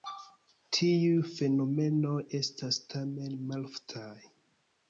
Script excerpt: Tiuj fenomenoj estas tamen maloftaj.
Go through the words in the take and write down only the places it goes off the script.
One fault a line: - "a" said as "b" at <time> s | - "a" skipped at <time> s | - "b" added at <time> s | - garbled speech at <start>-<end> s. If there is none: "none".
none